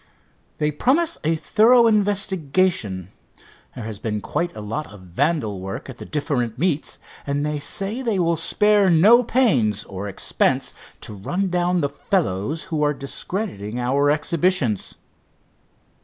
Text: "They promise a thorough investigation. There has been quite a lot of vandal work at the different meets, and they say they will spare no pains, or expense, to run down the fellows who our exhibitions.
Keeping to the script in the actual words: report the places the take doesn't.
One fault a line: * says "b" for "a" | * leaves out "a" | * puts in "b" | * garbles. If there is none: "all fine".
* puts in "are discrediting"